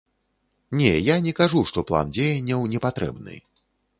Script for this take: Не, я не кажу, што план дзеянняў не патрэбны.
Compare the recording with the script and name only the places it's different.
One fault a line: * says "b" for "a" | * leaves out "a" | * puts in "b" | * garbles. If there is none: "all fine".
all fine